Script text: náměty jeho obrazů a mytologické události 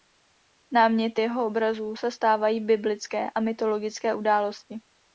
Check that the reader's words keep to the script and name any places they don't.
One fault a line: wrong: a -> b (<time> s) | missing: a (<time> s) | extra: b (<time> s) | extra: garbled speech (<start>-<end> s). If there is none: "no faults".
extra: se stávají biblické (1.9 s)